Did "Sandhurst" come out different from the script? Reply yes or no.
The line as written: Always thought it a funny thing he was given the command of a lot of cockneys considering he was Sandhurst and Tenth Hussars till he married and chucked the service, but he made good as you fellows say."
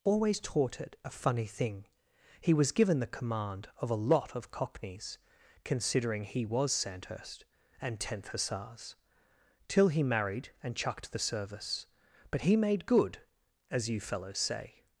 no